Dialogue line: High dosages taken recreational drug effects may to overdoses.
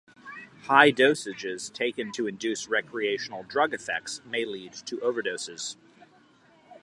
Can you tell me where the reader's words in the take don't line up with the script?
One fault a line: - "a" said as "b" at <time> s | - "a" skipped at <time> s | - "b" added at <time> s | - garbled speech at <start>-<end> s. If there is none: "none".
- "to induce" added at 2.1 s
- "lead" added at 4.5 s